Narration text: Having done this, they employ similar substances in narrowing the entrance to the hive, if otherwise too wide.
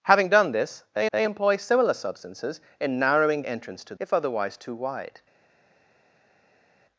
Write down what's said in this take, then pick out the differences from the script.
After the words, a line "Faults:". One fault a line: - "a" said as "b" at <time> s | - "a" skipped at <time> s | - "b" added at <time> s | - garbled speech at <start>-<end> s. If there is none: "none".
Having done this, they they employ similar substances in narrowing entrance to if otherwise too wide.
Faults:
- "they" added at 1.1 s
- "the" skipped at 3.4 s
- "the hive" skipped at 4.0 s